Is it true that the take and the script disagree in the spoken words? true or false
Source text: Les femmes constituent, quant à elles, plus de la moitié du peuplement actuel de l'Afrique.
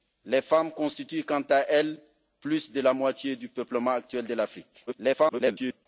true